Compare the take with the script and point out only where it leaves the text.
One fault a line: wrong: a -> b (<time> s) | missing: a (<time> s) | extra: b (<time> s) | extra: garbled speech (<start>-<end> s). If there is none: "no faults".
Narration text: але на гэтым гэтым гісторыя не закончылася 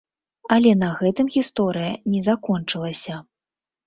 missing: гэтым (1.3 s)